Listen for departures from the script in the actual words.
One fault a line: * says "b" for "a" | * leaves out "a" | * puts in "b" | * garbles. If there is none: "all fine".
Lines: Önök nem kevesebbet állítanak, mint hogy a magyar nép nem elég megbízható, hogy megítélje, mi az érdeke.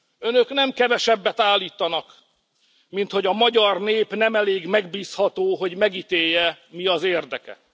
all fine